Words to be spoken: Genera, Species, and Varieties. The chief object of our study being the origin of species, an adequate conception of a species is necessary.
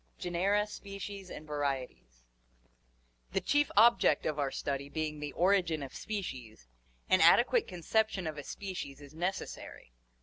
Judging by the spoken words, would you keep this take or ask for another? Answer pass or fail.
pass